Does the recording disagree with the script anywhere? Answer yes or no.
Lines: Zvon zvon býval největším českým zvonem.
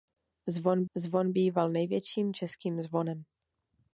no